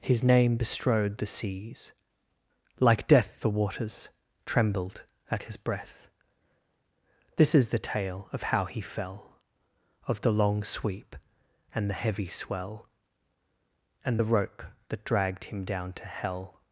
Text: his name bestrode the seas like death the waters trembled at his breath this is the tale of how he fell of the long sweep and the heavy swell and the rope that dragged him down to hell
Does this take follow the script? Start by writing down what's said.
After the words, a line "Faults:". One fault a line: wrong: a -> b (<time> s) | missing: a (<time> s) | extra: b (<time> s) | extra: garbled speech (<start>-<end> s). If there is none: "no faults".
his name bestrode the seas like death the waters trembled at his breath this is the tale of how he fell of the long sweep and the heavy swell and the rope that dragged him down to hell
Faults:
no faults